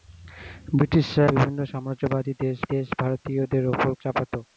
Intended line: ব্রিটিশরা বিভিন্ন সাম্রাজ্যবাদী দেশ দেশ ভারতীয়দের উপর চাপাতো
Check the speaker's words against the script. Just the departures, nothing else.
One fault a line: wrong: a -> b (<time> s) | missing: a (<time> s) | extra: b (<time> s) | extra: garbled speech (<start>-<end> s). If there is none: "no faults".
no faults